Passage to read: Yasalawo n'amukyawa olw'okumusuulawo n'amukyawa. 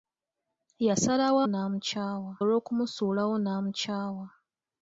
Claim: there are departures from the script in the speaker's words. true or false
false